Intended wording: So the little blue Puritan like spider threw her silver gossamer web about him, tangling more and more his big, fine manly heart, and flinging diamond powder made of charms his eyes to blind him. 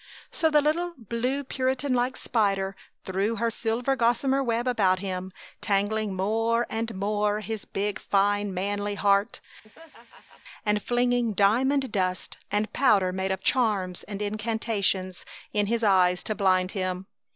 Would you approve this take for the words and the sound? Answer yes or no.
no